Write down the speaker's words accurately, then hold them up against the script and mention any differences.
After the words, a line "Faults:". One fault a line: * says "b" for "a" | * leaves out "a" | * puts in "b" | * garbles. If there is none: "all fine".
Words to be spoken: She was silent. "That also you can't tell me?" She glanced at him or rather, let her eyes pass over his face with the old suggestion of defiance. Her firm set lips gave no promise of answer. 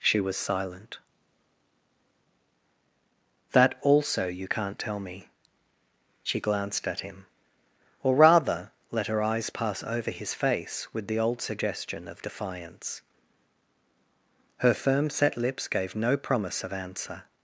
She was silent. "That also you can't tell me?" She glanced at him or rather, let her eyes pass over his face with the old suggestion of defiance. Her firm set lips gave no promise of answer.
Faults:
all fine